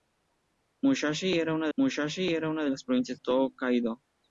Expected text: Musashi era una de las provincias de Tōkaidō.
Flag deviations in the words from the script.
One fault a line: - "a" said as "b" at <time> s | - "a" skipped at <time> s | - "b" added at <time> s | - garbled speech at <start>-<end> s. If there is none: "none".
- "musashi era una" added at 1.8 s
- "de" skipped at 3.2 s